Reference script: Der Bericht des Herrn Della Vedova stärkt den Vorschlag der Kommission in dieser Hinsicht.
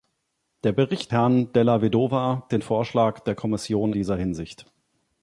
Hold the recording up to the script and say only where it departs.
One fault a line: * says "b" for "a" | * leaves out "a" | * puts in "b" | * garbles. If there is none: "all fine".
* leaves out "des"
* leaves out "stärkt"
* leaves out "in"